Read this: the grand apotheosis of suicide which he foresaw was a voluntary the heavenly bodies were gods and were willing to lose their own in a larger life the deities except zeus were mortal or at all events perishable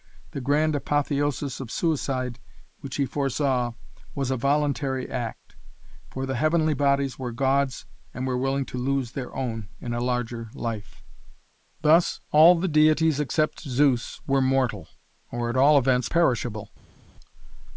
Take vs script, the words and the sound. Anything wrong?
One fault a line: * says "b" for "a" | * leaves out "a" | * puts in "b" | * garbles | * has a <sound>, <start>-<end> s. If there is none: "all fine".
* puts in "act for"
* puts in "thus all"